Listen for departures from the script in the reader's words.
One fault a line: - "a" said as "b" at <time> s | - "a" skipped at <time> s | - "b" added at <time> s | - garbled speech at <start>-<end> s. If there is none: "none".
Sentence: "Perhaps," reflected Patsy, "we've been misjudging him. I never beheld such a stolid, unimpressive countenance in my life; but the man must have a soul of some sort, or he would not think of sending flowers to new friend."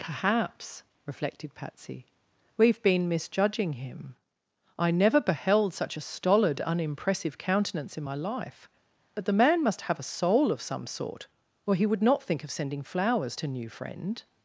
none